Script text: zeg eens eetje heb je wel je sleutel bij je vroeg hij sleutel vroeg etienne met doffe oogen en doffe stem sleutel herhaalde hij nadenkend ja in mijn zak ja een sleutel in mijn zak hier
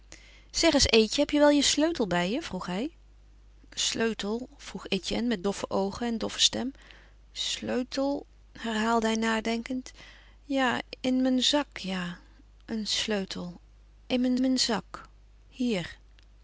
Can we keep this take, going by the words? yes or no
no